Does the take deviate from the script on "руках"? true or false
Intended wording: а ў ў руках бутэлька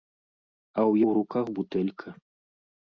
false